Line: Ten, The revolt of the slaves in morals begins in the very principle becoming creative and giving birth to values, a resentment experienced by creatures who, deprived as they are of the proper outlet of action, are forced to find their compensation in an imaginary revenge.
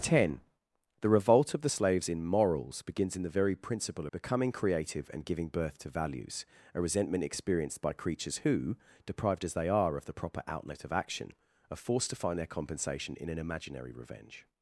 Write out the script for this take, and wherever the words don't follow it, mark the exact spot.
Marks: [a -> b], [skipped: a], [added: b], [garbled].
Ten, The revolt of the slaves in morals begins in the very principle becoming creative and giving birth to values, a resentment experienced by creatures who, deprived as they are of the proper outlet of action, are forced to find their compensation in an imaginary revenge.